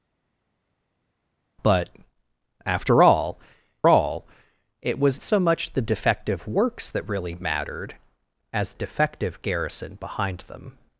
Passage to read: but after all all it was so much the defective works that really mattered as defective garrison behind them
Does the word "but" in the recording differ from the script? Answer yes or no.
no